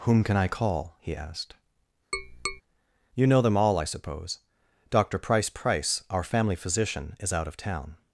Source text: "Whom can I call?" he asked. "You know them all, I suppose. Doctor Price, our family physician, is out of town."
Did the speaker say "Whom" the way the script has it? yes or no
yes